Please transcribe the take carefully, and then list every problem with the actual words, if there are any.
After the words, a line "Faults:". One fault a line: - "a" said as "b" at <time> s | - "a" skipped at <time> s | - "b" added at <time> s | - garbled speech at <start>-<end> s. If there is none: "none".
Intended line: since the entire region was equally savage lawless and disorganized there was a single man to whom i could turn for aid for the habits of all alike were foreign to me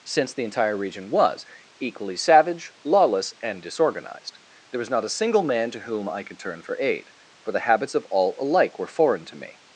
since the entire region was equally savage lawless and disorganized there was not a single man to whom i could turn for aid for the habits of all alike were foreign to me
Faults:
- "not" added at 4.9 s